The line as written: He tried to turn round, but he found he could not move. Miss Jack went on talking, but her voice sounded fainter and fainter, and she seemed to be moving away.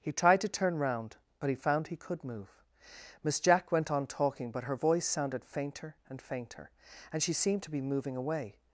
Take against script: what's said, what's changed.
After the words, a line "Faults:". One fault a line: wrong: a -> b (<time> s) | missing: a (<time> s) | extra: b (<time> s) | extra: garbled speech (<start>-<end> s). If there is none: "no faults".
He tried to turn round, but he found he could move. Miss Jack went on talking, but her voice sounded fainter and fainter, and she seemed to be moving away.
Faults:
missing: not (2.2 s)